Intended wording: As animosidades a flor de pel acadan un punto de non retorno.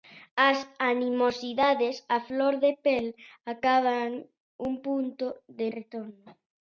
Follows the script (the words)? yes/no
no